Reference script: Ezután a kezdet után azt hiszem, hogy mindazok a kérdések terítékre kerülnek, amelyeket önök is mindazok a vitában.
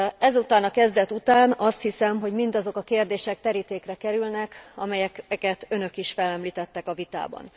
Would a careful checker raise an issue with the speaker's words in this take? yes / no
yes